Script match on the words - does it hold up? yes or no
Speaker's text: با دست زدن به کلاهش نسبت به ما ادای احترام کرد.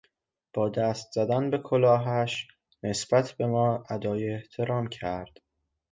yes